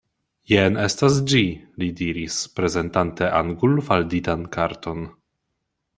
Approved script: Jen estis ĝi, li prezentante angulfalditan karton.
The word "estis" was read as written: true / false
false